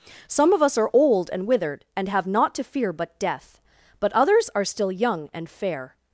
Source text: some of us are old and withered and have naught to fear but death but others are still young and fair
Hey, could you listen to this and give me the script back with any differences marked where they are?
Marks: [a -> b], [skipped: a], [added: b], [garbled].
some of us are old and withered and have naught to fear but death but others are still young and fair